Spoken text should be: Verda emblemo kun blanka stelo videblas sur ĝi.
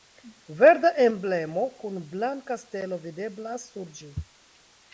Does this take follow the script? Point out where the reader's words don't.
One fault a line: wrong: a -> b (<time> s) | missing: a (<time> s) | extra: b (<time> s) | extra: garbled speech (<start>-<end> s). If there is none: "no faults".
no faults